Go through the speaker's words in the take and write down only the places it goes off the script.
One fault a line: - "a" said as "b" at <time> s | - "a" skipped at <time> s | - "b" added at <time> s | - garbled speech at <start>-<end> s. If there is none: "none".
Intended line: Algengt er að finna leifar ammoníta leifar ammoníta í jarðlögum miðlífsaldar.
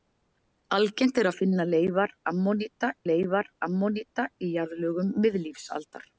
none